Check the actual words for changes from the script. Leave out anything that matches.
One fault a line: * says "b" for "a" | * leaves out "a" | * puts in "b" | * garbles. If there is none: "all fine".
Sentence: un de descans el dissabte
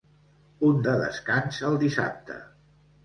all fine